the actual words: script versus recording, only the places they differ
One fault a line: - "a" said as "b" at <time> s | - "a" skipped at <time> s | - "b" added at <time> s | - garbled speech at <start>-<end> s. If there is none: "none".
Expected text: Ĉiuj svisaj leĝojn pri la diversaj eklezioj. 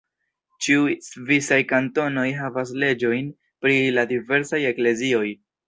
- "kantonoj havas" added at 1.7 s